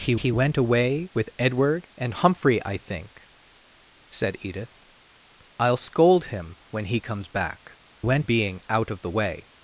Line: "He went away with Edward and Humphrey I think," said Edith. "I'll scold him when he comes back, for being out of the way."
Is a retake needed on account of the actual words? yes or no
yes